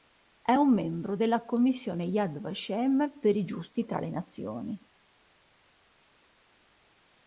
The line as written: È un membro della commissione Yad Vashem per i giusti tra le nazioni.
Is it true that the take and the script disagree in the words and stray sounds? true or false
false